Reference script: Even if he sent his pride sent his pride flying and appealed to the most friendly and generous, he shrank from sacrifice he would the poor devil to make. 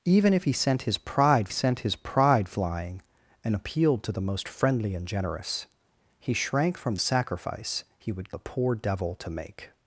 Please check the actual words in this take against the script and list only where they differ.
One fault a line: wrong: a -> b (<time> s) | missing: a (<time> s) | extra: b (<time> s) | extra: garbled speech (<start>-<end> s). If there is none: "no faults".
no faults